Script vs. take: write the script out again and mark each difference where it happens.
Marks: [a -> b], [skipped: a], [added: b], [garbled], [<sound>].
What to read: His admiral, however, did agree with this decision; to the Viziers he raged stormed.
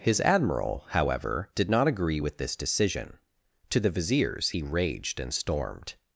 His admiral, however, did [added: not] agree with this decision; to the Viziers he raged [added: and] stormed.